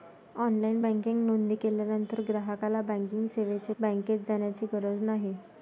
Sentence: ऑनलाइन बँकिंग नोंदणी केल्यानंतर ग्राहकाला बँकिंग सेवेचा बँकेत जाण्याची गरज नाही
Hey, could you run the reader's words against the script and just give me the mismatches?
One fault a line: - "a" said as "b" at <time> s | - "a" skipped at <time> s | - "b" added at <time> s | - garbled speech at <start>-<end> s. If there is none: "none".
none